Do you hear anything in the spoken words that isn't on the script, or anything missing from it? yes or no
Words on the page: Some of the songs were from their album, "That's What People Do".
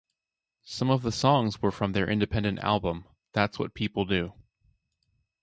yes